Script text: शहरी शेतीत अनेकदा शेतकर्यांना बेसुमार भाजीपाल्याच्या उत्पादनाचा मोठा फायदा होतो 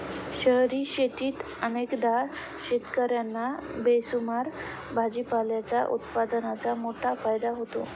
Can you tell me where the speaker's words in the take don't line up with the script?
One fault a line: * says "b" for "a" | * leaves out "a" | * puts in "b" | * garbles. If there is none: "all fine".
all fine